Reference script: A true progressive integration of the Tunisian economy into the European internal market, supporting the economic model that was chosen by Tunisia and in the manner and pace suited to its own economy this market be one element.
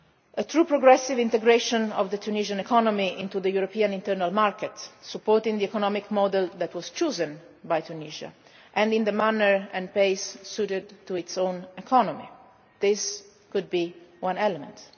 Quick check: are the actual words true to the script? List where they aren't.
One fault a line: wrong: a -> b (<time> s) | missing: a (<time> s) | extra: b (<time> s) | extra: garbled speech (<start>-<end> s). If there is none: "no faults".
wrong: market -> could (13.5 s)